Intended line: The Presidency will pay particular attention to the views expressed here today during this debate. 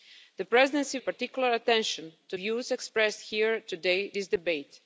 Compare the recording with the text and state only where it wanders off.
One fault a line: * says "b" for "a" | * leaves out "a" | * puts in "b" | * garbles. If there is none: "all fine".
* leaves out "will pay"
* leaves out "the"
* leaves out "during"